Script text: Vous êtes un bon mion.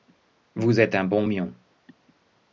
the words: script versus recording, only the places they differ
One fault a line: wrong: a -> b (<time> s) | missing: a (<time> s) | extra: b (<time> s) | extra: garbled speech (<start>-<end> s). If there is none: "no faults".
no faults